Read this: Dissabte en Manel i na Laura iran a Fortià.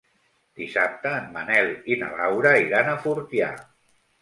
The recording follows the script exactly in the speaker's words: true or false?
true